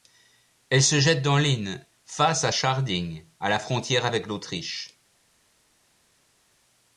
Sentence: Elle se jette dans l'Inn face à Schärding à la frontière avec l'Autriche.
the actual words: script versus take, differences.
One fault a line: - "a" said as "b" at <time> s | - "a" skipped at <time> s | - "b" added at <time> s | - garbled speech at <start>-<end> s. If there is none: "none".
none